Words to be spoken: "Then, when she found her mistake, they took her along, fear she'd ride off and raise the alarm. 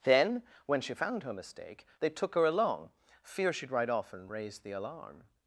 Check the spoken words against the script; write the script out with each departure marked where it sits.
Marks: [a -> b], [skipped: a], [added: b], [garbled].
"Then, when she found her mistake, they took her along, fear she'd ride off and raise the alarm.